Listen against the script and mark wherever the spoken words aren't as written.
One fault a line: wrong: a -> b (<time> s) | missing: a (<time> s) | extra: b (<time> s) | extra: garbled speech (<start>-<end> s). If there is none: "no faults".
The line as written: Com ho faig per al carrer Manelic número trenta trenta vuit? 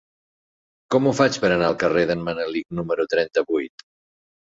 extra: anar (1.6 s)
extra: d'en (2.1 s)
missing: trenta (3.5 s)